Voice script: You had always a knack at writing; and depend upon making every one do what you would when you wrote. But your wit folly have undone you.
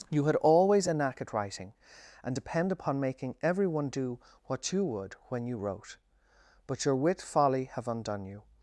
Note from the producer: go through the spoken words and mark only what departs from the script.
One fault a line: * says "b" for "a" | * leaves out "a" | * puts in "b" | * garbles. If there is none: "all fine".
all fine